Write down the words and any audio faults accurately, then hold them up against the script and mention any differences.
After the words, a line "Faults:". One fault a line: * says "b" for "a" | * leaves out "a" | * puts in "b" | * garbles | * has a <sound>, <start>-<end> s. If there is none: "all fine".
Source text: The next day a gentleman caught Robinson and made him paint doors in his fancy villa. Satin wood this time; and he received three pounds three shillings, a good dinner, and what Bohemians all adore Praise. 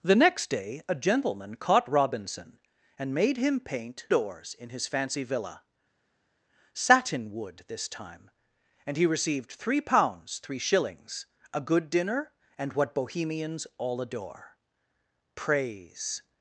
The next day a gentleman caught Robinson and made him paint doors in his fancy villa. Satin wood this time; and he received three pounds three shillings, a good dinner, and what Bohemians all adore Praise.
Faults:
all fine